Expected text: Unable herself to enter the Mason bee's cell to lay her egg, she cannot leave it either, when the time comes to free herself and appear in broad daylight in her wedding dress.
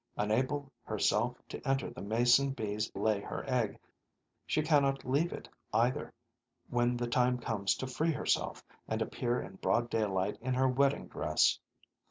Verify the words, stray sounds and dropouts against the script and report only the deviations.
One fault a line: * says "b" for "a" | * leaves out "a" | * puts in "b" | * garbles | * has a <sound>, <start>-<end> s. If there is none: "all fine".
* leaves out "cell to"